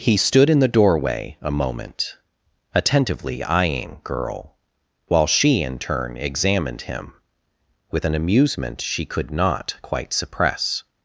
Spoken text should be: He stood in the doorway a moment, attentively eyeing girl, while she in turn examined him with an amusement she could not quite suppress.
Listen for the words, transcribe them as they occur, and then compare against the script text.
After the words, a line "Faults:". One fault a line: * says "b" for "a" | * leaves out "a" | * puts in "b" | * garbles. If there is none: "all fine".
He stood in the doorway a moment, attentively eyeing girl, while she in turn examined him with an amusement she could not quite suppress.
Faults:
all fine